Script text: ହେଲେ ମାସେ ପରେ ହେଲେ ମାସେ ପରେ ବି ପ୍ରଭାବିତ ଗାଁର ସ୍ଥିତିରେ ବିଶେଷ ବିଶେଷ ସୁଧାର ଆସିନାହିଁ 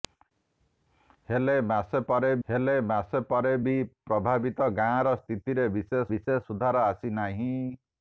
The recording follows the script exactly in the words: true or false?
true